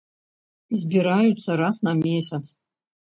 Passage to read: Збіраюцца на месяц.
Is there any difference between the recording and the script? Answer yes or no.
yes